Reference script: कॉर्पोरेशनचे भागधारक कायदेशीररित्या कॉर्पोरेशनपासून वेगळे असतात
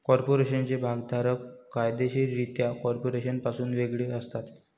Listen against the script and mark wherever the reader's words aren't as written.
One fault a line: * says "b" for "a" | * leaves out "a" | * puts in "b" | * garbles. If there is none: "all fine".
all fine